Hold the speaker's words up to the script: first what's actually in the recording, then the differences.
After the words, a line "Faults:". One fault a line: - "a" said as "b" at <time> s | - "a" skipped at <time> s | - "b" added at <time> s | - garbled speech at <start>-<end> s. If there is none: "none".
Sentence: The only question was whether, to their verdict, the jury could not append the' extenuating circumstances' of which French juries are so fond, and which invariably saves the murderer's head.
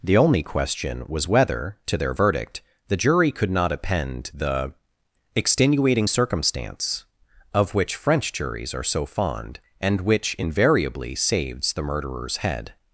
The only question was whether, to their verdict, the jury could not append the' extenuating circumstance' of which French juries are so fond, and which invariably saves the murderer's head.
Faults:
- "circumstances" said as "circumstance" at 6.1 s